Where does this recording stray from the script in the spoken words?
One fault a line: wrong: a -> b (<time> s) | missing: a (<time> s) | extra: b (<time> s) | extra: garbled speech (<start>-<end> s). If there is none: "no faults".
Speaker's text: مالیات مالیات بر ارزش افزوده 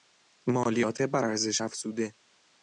missing: مالیات (1.0 s)